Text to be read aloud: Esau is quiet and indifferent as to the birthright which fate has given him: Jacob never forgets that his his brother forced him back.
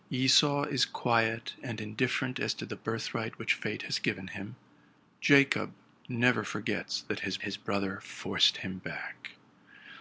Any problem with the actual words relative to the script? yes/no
no